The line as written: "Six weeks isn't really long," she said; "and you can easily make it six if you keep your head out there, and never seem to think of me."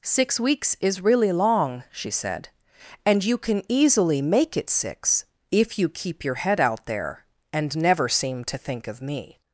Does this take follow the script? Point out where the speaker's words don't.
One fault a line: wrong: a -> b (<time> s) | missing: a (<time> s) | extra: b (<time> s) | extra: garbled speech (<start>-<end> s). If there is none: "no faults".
wrong: isn't -> is (0.8 s)